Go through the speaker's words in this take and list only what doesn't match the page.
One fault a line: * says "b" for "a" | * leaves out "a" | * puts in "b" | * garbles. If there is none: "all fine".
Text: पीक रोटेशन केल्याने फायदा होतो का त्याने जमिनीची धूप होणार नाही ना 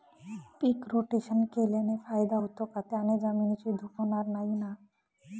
all fine